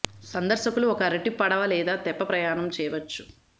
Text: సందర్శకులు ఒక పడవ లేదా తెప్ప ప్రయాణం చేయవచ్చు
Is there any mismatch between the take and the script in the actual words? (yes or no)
yes